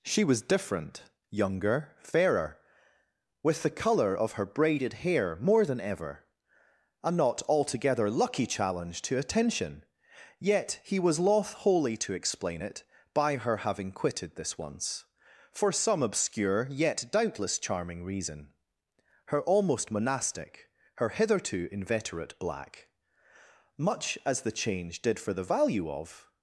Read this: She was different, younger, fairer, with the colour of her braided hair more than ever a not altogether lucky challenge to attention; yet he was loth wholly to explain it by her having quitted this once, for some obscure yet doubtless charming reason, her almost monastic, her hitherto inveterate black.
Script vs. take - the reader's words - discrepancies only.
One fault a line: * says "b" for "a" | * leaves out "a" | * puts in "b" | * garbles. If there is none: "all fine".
* puts in "Much as the change did for the value of"